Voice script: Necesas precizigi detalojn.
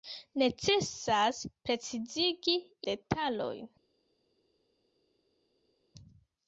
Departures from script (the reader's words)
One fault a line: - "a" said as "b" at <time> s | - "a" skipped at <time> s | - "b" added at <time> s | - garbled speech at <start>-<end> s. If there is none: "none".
none